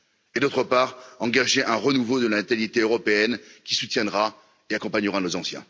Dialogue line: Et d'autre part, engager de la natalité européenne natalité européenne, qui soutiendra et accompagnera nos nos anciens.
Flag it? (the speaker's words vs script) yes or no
yes